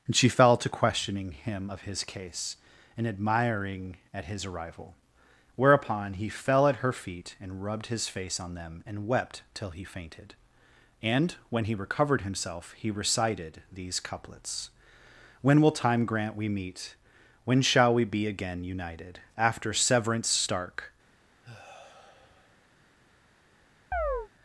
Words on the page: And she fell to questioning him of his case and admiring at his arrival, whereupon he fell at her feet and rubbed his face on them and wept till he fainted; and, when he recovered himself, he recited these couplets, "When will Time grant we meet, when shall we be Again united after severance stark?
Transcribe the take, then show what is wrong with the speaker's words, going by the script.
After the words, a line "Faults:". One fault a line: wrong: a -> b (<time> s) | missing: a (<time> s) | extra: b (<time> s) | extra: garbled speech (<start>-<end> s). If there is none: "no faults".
And she fell to questioning him of his case and admiring at his arrival, whereupon he fell at her feet and rubbed his face on them and wept till he fainted; and, when he recovered himself, he recited these couplets, "When will Time grant we meet, when shall we be Again united after severance stark?
Faults:
no faults